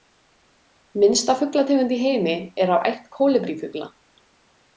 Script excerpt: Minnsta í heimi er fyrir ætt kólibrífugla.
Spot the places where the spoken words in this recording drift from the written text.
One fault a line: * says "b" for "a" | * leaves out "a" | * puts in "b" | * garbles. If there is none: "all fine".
* puts in "fuglategund"
* says "af" for "fyrir"